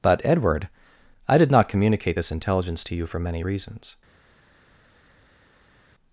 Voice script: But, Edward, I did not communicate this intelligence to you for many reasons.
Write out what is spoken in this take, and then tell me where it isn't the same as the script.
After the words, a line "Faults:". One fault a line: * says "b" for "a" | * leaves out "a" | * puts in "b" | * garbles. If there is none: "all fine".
But, Edward, I did not communicate this intelligence to you for many reasons.
Faults:
all fine